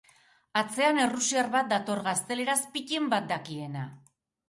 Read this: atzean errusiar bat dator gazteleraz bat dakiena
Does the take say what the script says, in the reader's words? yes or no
no